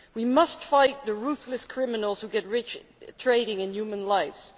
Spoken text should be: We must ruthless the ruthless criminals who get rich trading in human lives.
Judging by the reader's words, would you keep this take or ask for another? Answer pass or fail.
fail